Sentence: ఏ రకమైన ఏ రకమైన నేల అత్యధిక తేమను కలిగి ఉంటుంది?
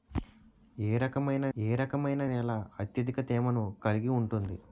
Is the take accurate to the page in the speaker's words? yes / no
yes